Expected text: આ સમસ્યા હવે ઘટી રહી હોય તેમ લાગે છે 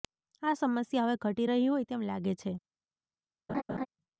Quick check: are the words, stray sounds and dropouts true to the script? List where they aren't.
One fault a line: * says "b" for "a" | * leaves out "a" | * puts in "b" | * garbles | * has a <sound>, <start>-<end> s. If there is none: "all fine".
* has a laugh, 3.5-3.9 s